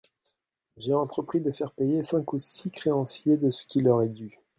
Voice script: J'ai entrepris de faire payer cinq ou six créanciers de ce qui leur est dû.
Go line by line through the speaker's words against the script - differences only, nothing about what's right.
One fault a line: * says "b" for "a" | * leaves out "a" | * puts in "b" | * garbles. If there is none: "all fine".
all fine